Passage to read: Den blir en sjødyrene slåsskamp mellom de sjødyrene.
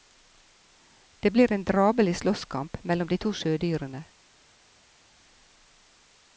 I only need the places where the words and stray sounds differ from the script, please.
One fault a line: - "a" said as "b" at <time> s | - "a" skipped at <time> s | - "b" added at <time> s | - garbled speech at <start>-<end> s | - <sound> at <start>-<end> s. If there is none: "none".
- "Den" said as "Det" at 1.2 s
- "sjødyrene" said as "drabelig" at 1.6 s
- "to" added at 3.2 s